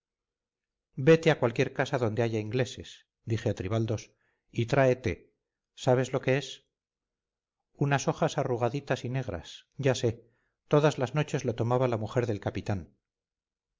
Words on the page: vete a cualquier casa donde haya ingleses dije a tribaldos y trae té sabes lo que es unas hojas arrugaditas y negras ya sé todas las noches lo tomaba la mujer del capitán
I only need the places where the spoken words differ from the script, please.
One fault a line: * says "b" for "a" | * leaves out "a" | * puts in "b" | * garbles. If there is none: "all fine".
all fine